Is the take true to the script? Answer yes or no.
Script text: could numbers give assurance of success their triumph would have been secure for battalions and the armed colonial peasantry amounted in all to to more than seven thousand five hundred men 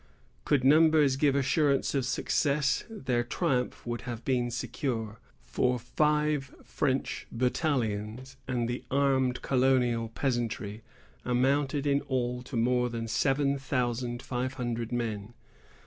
no